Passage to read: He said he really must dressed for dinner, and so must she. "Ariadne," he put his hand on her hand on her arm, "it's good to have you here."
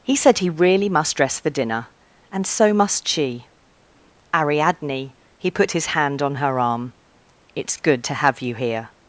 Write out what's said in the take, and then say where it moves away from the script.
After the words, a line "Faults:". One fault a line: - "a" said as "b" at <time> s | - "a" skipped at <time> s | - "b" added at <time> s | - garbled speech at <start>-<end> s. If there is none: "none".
He said he really must dress for dinner, and so must she. "Ariadne," he put his hand on her arm, "it's good to have you here."
Faults:
- "dressed" said as "dress" at 1.1 s
- "hand on her" skipped at 6.6 s